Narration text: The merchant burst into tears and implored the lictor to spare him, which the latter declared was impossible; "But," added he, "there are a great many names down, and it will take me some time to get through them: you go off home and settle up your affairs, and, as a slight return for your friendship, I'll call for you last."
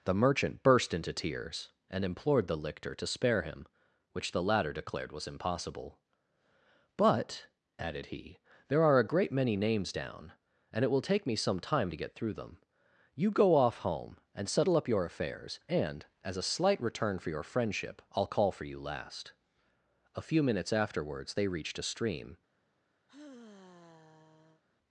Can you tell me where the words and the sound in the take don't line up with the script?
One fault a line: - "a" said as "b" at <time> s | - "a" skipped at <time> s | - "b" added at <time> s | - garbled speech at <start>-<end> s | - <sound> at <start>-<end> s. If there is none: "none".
- "A few minutes afterwards they reached a stream" added at 20.1 s
- sigh at 23.1-24.6 s